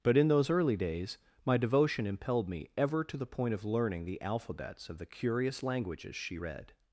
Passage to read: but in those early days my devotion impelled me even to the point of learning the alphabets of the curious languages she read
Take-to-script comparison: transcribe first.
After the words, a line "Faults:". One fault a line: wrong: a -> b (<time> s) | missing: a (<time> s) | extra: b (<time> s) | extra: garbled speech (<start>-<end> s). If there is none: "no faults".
but in those early days my devotion impelled me ever to the point of learning the alphabets of the curious languages she read
Faults:
wrong: even -> ever (2.8 s)